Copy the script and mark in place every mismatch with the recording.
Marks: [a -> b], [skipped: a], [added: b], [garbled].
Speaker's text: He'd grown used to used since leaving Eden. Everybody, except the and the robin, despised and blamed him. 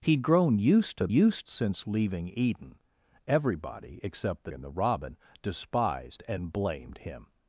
He'd grown used to used since leaving Eden. Everybody, except the and the robin, despised and blamed him.